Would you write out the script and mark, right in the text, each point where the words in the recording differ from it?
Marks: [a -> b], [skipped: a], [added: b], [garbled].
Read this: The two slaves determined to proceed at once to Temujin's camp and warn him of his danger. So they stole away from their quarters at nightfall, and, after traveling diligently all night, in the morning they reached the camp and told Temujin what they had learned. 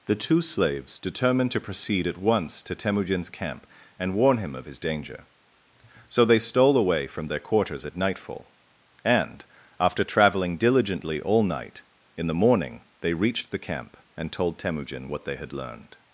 The two slaves determined to proceed at once to Temujin's camp and warn him of his danger. So they stole away from their quarters at nightfall, and, after traveling diligently all night, in the morning they reached the camp and told Temujin what they had learned.